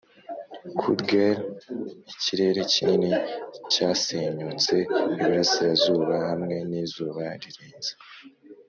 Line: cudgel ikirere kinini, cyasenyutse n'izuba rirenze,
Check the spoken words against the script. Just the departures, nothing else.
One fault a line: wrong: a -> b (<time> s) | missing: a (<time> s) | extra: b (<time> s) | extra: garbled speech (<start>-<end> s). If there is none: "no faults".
extra: iburasirazuba hamwe (5.1 s)